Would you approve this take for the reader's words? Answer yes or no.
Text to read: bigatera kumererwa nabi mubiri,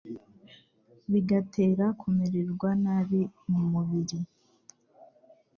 no